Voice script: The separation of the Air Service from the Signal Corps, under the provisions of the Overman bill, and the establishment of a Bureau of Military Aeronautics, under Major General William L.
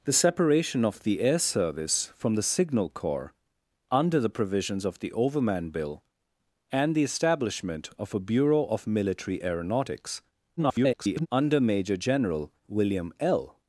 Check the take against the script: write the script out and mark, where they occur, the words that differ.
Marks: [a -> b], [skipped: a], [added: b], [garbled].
The separation of the Air Service from the Signal Corps, under the provisions of the Overman bill, and the establishment of a Bureau of Military Aeronautics, [garbled] under Major General William L.